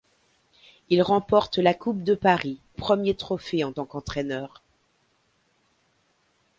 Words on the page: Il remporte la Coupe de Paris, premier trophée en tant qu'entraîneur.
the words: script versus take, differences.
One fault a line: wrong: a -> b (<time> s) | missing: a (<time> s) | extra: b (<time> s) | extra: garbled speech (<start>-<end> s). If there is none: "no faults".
no faults